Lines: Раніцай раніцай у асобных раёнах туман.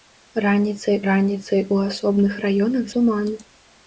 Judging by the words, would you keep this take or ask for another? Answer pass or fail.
pass